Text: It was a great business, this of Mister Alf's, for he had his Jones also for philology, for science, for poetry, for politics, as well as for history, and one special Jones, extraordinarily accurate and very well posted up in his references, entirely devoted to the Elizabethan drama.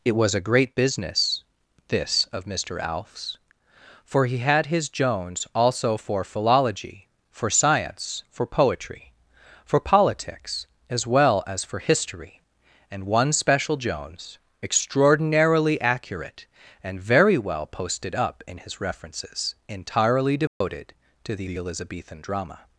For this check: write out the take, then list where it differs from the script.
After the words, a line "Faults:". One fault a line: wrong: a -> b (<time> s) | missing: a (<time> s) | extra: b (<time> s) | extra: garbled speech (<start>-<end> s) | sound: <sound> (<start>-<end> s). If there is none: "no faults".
It was a great business, this of Mister Alf's, for he had his Jones also for philology, for science, for poetry, for politics, as well as for history, and one special Jones, extraordinarily accurate and very well posted up in his references, entirely devoted to the the Elizabethan drama.
Faults:
sound: dropout (20.5-20.6 s)
extra: the (21.4 s)